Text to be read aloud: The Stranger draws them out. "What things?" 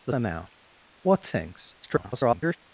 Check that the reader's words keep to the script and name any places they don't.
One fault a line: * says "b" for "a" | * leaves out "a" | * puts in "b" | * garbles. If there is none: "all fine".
* leaves out "Stranger draws"
* garbles